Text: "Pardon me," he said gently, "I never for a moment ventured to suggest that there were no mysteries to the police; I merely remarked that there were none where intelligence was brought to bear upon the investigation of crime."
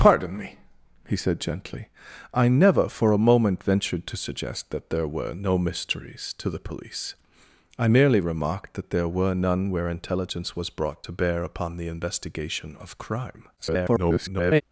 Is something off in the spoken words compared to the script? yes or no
yes